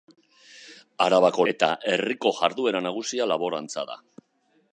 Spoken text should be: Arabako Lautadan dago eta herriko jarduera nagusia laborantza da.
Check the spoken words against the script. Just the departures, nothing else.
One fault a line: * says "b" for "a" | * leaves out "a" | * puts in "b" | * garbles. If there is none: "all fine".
* leaves out "Lautadan dago"